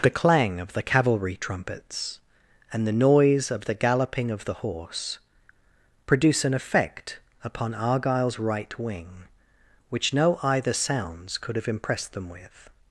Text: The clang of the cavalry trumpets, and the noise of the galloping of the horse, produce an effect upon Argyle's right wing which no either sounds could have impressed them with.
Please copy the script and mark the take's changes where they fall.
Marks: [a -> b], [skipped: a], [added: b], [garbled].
The clang of the cavalry trumpets, and the noise of the galloping of the horse, produce an effect upon Argyle's right wing which no either sounds could have impressed them with.